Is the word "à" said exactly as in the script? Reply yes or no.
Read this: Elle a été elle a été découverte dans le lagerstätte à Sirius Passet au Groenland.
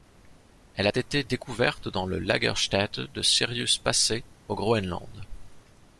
no